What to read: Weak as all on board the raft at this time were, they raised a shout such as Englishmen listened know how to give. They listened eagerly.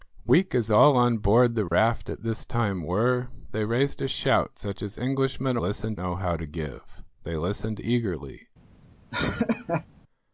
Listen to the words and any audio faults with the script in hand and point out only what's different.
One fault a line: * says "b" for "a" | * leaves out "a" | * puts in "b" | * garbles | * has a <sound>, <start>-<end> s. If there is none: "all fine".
* has a dropout, 1.7-1.7 s
* has a laugh, 9.1-9.9 s